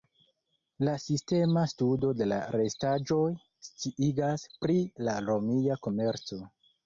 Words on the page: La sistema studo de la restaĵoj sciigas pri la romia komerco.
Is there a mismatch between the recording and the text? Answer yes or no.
no